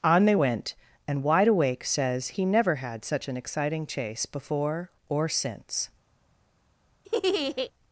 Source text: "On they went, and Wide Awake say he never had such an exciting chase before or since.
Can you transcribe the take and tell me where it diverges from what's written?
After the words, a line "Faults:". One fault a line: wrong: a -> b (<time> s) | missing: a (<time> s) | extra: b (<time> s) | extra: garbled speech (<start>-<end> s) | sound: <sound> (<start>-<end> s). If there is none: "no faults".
"On they went, and Wide Awake says he never had such an exciting chase before or since.
Faults:
wrong: say -> says (1.8 s)
sound: laugh (7.0-7.7 s)